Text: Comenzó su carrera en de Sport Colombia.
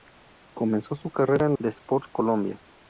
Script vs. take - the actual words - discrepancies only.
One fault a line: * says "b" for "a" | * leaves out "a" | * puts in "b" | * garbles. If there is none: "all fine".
all fine